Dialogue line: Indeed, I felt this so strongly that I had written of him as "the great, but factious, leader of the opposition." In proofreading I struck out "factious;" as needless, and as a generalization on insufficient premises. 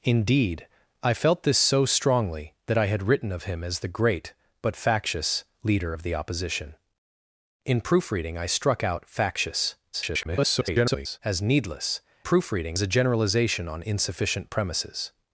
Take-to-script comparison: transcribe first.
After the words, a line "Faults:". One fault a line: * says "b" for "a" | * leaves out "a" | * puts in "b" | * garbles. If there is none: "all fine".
Indeed, I felt this so strongly that I had written of him as "the great, but factious, leader of the opposition." In proofreading I struck out "factious;" [garbled] as needless, proofreading as a generalization on insufficient premises.
Faults:
* garbles
* says "proofreading" for "and"